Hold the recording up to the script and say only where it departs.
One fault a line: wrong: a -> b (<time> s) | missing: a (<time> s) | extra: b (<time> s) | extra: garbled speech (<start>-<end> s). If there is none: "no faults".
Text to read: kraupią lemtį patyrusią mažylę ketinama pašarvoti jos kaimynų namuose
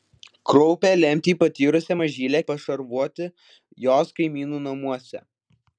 missing: ketinama (2.4 s)